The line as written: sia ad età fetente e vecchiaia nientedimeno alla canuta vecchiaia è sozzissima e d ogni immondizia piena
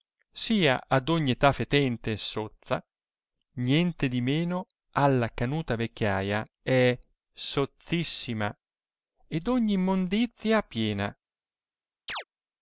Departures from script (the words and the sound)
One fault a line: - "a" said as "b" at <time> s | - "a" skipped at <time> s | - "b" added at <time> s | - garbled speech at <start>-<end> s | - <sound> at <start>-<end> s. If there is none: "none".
- "ogni" added at 1.1 s
- "vecchiaia" said as "sozza" at 2.2 s
- chirp at 12.1-12.2 s